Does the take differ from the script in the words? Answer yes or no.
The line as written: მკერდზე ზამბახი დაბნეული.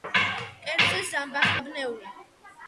no